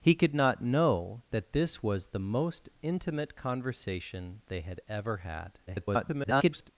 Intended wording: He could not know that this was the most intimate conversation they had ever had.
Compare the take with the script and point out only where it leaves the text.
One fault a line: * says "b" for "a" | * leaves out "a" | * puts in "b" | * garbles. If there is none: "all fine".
* garbles